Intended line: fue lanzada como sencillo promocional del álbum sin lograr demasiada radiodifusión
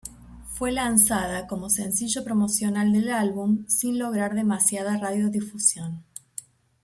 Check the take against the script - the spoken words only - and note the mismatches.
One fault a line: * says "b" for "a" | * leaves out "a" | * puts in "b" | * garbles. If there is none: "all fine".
all fine